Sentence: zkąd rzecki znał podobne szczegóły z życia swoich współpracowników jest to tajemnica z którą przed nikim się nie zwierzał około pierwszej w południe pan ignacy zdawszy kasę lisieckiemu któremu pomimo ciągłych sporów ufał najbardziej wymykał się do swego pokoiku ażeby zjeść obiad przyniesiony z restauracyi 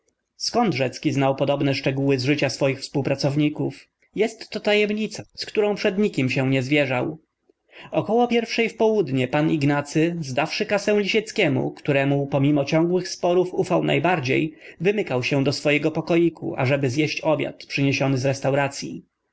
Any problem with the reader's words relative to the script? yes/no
no